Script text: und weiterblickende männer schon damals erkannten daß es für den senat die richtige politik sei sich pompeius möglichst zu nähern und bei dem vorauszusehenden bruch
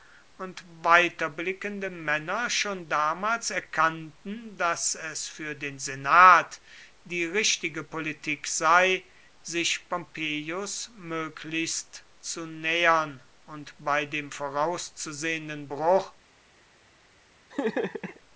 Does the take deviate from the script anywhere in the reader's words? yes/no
no